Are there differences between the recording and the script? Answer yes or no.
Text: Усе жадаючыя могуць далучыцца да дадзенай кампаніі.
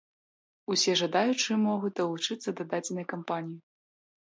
no